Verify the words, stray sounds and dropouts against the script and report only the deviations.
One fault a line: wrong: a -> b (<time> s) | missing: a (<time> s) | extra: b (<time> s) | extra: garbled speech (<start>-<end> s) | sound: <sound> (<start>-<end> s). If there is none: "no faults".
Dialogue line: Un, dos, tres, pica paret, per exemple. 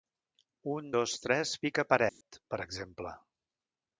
sound: dropout (2.1-2.2 s)